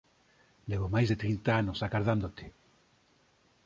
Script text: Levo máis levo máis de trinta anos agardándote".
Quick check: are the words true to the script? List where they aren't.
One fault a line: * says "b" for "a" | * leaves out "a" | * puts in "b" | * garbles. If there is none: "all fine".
* leaves out "levo máis"